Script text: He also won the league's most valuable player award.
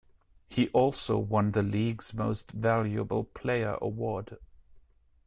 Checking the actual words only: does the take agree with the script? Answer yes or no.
yes